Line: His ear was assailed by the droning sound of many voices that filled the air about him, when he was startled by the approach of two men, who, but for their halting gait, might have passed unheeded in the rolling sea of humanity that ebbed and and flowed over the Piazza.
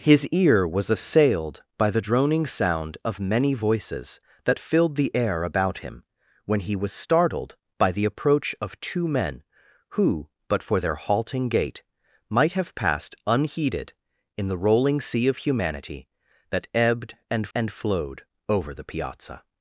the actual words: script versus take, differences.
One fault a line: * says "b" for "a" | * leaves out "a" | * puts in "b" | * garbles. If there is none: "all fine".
all fine